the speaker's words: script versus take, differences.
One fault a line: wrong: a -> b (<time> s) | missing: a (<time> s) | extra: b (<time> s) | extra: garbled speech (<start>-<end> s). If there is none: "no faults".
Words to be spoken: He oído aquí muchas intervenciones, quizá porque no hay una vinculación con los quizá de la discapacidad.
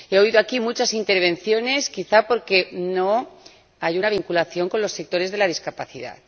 wrong: quizá -> sectores (4.9 s)